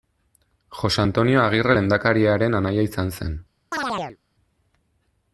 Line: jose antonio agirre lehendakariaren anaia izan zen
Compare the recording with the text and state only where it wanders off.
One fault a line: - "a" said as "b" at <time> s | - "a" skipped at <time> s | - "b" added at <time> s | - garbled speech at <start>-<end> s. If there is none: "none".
none